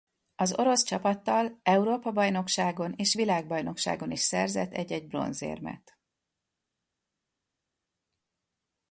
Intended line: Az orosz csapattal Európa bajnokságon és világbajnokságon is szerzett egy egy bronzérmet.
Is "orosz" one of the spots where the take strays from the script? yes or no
no